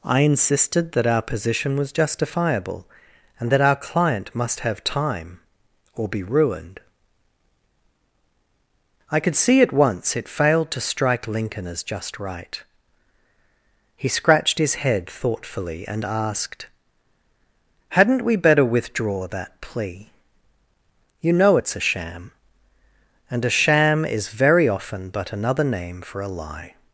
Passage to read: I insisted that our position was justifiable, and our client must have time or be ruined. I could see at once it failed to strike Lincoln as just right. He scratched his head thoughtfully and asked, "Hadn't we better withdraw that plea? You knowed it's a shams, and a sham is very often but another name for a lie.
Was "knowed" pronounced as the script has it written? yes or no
no